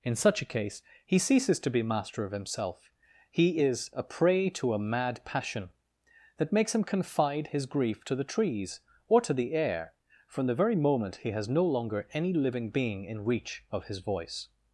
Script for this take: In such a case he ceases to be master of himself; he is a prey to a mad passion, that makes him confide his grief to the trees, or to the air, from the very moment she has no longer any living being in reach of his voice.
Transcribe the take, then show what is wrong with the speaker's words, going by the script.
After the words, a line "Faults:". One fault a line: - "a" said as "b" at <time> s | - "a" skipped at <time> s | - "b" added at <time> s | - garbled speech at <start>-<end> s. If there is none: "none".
In such a case he ceases to be master of himself; he is a prey to a mad passion, that makes him confide his grief to the trees, or to the air, from the very moment he has no longer any living being in reach of his voice.
Faults:
- "she" said as "he" at 11.2 s